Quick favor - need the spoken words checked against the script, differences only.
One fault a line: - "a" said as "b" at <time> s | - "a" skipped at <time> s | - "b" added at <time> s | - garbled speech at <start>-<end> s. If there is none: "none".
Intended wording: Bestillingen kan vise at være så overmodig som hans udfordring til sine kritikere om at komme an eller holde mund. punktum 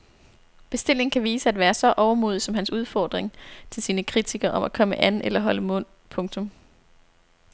none